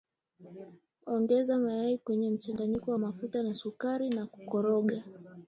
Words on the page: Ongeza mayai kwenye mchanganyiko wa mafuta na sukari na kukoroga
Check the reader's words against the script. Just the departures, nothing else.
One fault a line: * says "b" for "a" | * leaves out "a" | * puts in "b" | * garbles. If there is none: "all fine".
all fine